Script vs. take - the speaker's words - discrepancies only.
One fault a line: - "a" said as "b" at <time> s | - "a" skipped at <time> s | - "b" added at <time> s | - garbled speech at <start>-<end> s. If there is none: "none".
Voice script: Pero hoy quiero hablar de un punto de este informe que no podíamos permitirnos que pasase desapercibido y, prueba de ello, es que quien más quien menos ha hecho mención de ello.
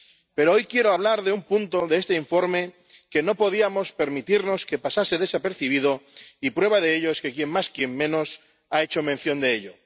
none